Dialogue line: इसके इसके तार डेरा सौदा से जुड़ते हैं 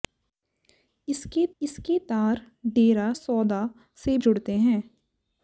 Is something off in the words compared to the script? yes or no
no